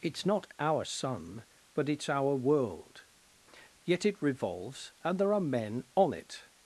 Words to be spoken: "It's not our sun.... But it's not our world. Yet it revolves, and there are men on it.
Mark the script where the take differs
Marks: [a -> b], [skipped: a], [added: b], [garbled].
"It's not our sun.... But it's [skipped: not] our world. Yet it revolves, and there are men on it.